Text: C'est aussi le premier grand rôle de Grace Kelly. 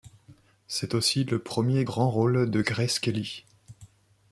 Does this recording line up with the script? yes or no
yes